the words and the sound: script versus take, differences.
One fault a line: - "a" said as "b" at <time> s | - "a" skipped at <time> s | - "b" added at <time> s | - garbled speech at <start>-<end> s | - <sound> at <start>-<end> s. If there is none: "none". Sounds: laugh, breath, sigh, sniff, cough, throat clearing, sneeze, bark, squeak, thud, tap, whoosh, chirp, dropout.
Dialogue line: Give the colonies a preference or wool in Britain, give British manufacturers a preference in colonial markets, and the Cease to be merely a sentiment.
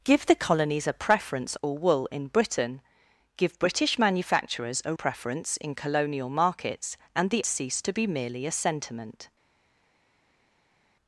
none